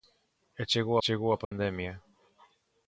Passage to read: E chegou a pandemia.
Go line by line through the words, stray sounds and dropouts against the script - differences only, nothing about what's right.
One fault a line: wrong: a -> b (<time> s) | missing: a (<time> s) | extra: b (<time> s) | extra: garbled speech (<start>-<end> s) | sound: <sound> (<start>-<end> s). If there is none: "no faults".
extra: chegou (1.0 s)
sound: dropout (1.4-1.5 s)